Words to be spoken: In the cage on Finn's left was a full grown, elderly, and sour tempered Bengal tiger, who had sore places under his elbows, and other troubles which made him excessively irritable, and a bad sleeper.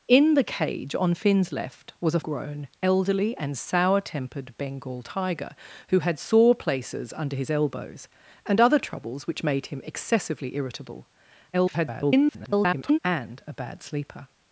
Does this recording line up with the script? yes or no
no